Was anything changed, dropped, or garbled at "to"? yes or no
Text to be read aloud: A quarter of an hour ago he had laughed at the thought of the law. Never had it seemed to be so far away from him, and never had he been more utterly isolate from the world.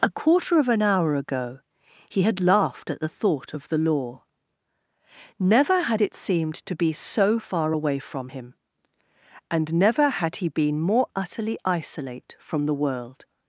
no